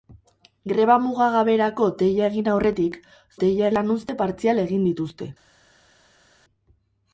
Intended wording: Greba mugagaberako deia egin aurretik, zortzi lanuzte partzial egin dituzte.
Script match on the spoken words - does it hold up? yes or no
no